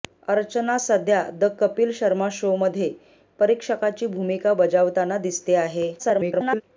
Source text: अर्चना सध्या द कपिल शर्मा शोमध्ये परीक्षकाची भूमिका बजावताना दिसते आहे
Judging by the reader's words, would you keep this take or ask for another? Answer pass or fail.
fail